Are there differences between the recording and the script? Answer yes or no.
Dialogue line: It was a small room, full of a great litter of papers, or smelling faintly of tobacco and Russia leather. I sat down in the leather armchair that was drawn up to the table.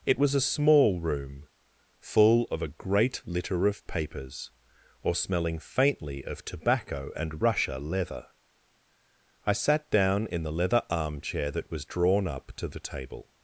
no